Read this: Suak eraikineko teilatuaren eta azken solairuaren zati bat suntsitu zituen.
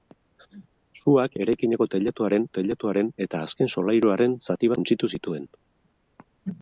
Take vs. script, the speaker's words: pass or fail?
fail